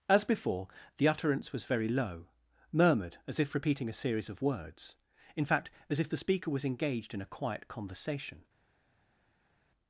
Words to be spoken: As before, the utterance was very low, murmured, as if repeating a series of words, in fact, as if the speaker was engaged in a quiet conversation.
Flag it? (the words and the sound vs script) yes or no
no